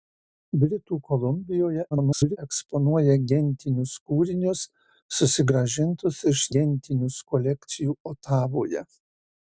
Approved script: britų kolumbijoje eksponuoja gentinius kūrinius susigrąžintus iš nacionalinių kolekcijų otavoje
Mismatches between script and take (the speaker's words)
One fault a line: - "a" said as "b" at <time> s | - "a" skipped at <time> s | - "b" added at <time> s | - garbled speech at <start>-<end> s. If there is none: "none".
- garbled speech at 1.9-2.4 s
- "nacionalinių" said as "gentinius" at 6.6 s